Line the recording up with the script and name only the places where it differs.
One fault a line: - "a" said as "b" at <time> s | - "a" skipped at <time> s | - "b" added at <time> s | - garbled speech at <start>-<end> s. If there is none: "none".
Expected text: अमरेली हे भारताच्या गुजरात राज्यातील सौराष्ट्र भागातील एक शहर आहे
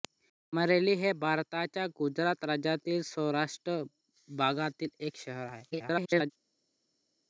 - garbled speech at 5.7-6.3 s